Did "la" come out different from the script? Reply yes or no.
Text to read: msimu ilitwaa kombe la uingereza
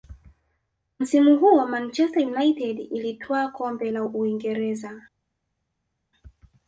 no